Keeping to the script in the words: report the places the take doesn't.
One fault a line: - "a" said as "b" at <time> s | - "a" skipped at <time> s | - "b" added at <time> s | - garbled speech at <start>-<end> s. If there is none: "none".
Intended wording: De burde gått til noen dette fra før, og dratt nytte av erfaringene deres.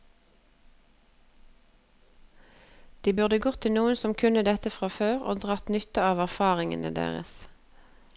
- "som kunne" added at 4.0 s